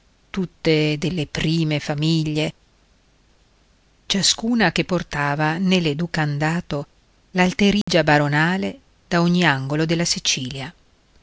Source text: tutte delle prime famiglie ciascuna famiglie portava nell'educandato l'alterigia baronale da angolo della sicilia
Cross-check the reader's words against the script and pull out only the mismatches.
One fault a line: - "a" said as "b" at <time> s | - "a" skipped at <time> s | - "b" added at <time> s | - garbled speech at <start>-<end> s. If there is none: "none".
- "famiglie" said as "che" at 4.7 s
- "ogni" added at 9.2 s